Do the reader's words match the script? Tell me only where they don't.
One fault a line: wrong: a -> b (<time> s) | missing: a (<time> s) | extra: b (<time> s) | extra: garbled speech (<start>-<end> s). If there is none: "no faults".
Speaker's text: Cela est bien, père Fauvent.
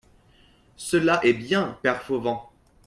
no faults